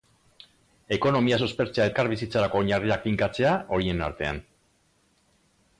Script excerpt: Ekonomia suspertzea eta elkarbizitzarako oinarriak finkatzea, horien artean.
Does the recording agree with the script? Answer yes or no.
no